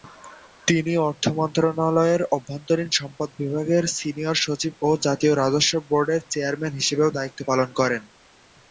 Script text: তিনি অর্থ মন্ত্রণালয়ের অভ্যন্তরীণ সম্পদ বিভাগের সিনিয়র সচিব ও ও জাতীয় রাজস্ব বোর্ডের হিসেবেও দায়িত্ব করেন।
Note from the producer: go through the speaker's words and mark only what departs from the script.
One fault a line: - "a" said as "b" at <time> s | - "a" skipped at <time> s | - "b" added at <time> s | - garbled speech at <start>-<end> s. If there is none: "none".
- "ও" skipped at 5.0 s
- "চেয়ারম্যান" added at 6.3 s
- "পালন" added at 7.5 s